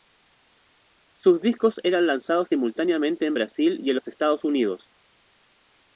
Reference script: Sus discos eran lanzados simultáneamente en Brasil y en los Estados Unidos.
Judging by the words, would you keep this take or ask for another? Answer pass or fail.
pass